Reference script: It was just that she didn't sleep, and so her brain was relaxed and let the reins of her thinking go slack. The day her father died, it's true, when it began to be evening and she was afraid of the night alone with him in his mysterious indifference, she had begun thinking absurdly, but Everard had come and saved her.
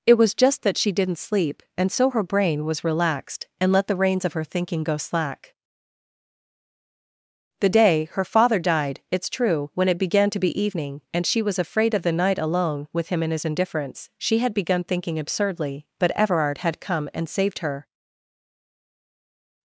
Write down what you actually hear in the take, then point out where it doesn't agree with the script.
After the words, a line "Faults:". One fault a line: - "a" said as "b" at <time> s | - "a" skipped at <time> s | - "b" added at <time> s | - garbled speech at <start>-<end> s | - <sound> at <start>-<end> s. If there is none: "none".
It was just that she didn't sleep, and so her brain was relaxed and let the reins of her thinking go slack. The day her father died, it's true, when it began to be evening and she was afraid of the night alone with him in his indifference, she had begun thinking absurdly, but Everard had come and saved her.
Faults:
- "mysterious" skipped at 13.4 s